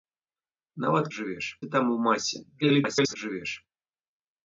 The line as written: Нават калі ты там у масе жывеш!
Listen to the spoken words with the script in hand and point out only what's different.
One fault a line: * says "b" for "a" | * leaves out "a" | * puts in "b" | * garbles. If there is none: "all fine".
* says "жывеш" for "калі"
* garbles